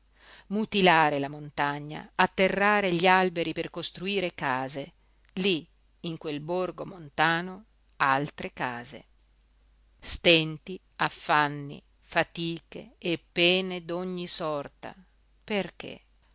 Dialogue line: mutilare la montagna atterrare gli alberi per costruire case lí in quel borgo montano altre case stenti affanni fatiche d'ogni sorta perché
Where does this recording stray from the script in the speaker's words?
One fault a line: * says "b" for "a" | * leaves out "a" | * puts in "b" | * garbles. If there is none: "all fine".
* puts in "e pene"